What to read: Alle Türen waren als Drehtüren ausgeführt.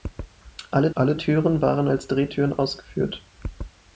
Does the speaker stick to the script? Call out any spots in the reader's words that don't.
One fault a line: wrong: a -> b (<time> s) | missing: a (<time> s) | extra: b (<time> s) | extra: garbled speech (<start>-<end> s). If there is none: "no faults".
extra: alle (0.9 s)